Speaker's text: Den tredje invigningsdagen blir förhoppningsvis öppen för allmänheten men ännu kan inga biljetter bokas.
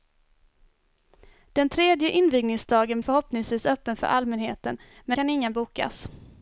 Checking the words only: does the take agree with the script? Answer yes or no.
no